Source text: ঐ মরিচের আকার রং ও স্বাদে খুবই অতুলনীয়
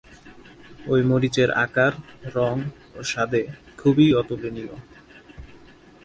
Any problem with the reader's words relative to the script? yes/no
no